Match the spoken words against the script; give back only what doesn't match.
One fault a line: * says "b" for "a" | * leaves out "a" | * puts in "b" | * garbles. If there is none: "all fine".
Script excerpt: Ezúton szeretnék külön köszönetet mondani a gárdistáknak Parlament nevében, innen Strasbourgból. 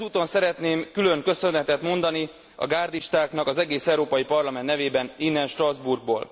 * puts in "az egész Európai"